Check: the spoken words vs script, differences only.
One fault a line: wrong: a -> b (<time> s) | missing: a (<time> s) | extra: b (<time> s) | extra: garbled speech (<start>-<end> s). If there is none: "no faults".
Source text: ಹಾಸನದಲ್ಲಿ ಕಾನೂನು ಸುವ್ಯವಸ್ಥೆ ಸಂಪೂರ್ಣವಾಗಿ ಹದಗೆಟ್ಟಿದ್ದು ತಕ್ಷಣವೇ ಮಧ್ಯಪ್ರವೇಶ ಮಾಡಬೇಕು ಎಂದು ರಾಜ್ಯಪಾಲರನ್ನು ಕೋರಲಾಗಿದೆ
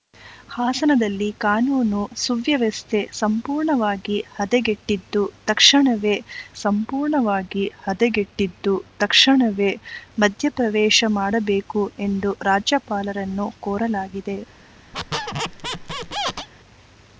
extra: ಸಂಪೂರ್ಣವಾಗಿ ಹದಗೆಟ್ಟಿದ್ದು ತಕ್ಷಣವೇ (6.6 s)